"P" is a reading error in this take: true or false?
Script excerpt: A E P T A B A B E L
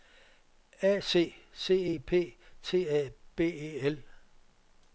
false